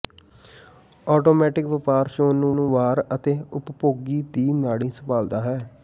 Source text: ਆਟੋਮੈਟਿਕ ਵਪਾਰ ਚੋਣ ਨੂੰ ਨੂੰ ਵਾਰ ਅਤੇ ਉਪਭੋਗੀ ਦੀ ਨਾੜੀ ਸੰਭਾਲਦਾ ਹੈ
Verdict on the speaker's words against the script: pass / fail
pass